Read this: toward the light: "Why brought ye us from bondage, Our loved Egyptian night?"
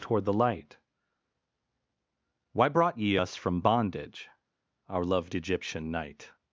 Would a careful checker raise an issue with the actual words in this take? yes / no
no